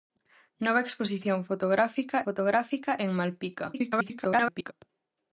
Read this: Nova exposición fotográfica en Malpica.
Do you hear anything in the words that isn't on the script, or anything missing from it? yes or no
yes